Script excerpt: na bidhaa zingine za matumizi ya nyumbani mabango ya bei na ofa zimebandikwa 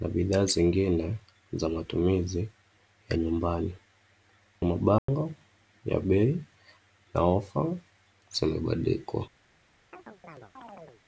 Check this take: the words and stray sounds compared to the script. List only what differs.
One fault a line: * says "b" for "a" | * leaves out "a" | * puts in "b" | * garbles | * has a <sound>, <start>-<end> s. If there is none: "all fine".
* has a dropout, 5.0-5.1 s
* has a chirp, 9.9-11.0 s